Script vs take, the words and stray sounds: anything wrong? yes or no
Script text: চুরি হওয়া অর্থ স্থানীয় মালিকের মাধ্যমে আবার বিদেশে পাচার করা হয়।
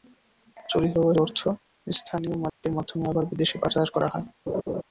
yes